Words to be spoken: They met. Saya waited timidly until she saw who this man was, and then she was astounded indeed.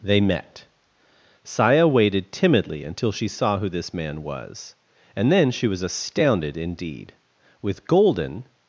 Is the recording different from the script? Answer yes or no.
yes